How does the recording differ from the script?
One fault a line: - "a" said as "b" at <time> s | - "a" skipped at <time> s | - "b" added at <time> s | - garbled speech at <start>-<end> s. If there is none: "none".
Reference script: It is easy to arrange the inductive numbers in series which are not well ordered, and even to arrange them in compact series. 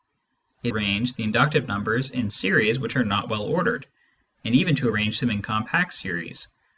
- "is easy to" skipped at 0.7 s